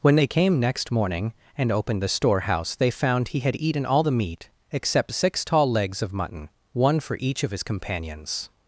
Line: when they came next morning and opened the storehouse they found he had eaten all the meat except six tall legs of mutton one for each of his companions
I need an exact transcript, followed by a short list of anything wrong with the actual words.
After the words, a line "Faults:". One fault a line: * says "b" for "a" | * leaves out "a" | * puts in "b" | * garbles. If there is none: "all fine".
when they came next morning and opened the storehouse they found he had eaten all the meat except six tall legs of mutton one for each of his companions
Faults:
all fine